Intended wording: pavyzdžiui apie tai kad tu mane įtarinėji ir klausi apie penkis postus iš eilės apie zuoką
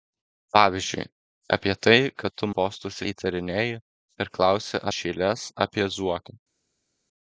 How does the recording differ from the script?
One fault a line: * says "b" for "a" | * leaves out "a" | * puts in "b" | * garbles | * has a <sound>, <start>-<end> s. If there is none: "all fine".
* says "postus" for "mane"
* leaves out "apie penkis postus"